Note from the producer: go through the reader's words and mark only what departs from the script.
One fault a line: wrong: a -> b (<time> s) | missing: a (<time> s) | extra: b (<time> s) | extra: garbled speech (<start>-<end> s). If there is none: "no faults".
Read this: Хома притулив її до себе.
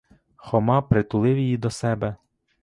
no faults